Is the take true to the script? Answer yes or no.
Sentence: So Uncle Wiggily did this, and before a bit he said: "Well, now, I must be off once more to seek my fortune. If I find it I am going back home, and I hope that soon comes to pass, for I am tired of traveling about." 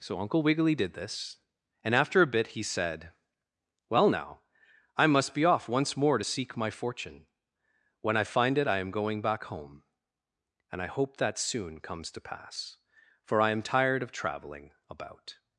no